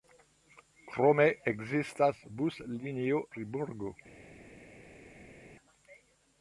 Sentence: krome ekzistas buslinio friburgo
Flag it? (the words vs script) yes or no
no